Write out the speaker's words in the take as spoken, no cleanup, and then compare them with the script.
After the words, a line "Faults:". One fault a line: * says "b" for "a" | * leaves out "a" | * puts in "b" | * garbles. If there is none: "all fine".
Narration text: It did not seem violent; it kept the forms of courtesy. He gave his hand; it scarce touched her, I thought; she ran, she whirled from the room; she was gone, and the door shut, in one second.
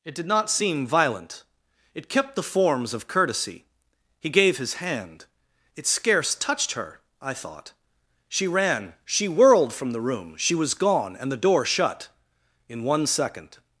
It did not seem violent; it kept the forms of courtesy. He gave his hand; it scarce touched her, I thought; she ran, she whirled from the room; she was gone, and the door shut, in one second.
Faults:
all fine